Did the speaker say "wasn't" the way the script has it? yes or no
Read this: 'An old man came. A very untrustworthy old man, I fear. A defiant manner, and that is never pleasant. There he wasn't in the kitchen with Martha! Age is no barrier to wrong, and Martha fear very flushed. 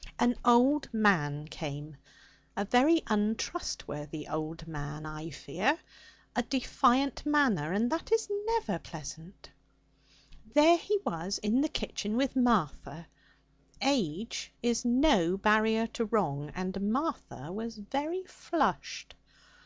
no